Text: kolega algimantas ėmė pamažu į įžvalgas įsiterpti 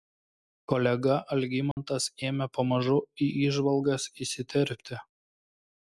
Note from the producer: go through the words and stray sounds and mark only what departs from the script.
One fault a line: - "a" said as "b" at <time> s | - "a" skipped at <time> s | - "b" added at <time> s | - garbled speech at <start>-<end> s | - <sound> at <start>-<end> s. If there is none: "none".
- dropout at 1.7-1.8 s